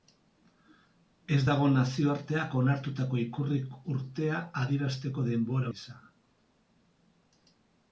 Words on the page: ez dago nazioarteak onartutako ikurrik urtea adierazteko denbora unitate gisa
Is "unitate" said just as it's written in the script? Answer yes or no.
no